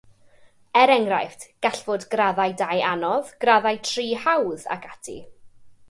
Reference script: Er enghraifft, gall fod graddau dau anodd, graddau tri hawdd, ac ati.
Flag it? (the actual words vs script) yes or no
no